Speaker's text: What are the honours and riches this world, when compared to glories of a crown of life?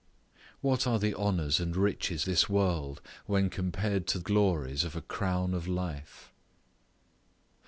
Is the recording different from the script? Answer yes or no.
no